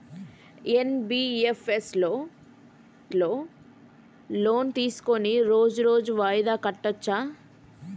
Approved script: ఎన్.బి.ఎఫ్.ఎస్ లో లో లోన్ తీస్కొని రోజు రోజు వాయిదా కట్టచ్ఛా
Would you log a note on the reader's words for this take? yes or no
no